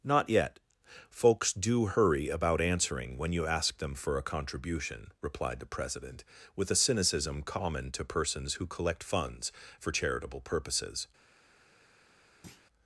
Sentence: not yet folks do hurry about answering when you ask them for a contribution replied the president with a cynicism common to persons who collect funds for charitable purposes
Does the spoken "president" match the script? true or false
true